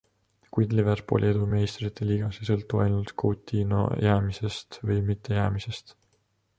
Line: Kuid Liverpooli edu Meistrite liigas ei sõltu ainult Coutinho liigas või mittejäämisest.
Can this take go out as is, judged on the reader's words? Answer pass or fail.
fail